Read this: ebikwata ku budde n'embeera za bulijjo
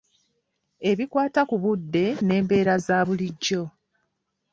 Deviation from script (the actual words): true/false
false